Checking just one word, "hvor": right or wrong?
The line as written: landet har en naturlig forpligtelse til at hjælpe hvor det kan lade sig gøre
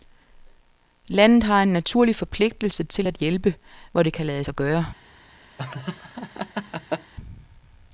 right